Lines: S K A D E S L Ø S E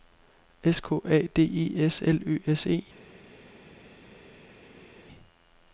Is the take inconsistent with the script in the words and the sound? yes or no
no